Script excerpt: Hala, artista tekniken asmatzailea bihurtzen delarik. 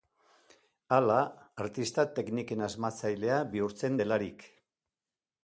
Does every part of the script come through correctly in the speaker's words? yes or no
yes